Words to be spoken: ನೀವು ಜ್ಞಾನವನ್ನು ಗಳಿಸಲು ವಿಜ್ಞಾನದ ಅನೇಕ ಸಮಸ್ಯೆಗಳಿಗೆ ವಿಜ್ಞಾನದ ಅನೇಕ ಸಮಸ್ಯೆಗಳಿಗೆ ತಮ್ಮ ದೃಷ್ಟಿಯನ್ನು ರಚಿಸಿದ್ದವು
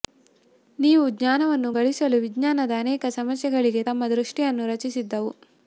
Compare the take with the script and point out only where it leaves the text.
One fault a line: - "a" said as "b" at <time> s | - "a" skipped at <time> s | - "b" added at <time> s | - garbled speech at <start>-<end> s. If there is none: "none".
- "ವಿಜ್ಞಾನದ ಅನೇಕ ಸಮಸ್ಯೆಗಳಿಗೆ" skipped at 3.8 s